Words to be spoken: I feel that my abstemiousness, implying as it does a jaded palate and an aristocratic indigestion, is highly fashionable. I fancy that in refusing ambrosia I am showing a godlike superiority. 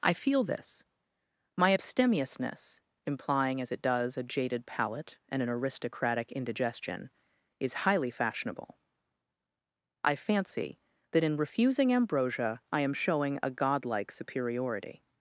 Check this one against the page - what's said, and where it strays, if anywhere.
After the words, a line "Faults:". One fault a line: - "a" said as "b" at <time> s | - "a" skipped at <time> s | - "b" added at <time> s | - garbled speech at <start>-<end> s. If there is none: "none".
I feel this my abstemiousness, implying as it does a jaded palate and an aristocratic indigestion, is highly fashionable. I fancy that in refusing ambrosia I am showing a godlike superiority.
Faults:
- "that" said as "this" at 0.4 s